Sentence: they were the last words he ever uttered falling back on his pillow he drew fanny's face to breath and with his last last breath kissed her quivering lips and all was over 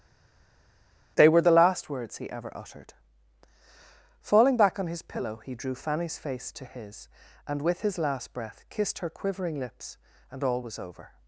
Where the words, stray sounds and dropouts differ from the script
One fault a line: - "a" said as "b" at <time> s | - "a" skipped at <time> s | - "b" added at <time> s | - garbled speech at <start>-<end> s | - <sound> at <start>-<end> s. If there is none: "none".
- "breath" said as "his" at 6.7 s
- "last" skipped at 8.3 s